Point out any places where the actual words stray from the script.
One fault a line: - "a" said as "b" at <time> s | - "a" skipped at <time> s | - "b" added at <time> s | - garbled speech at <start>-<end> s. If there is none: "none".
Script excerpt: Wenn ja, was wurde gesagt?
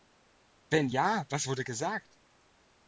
none